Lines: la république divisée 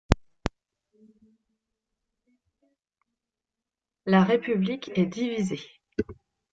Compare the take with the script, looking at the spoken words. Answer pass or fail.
fail